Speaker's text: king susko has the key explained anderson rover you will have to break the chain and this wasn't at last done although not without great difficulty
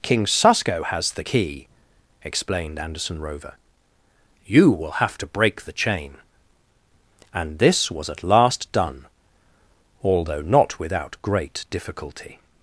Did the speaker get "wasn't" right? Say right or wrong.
wrong